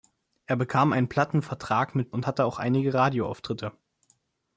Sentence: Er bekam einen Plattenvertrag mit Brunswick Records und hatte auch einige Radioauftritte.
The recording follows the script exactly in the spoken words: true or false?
false